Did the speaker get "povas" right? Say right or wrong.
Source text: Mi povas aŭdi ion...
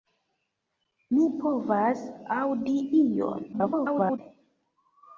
right